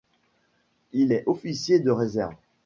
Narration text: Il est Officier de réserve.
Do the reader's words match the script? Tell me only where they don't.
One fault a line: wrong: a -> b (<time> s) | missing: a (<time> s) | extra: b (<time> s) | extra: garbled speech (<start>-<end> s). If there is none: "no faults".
no faults